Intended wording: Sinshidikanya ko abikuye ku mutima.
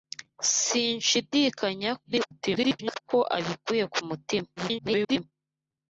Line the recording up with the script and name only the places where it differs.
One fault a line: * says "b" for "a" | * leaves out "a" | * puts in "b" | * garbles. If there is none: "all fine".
* garbles
* garbles